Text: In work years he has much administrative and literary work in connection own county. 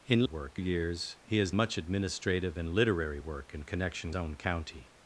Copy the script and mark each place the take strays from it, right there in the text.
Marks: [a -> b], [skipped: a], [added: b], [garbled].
In work years he has much administrative and literary work in connection own county.